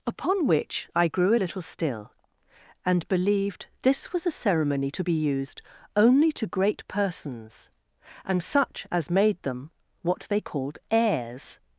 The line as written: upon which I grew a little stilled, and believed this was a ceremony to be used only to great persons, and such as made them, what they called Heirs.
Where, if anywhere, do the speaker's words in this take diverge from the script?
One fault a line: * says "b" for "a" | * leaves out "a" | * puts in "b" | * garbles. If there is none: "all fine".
* says "still" for "stilled"